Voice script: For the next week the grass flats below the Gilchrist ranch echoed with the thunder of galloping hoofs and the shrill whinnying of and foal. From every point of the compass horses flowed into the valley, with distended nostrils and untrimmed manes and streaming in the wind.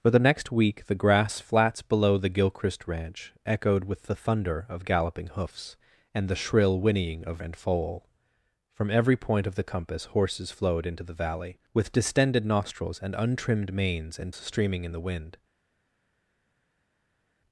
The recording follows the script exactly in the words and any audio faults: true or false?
true